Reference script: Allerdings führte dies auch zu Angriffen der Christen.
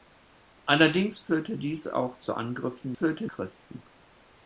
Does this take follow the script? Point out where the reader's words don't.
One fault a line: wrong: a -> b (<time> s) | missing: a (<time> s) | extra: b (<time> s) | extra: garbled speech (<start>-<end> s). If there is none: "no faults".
wrong: der -> führte (2.9 s)